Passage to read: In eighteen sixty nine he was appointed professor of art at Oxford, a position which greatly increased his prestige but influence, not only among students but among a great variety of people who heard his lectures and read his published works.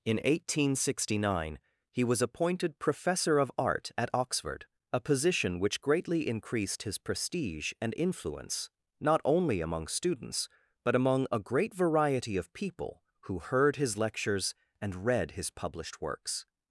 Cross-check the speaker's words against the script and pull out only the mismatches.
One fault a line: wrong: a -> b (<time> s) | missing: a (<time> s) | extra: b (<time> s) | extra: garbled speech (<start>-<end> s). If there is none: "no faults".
wrong: but -> and (7.8 s)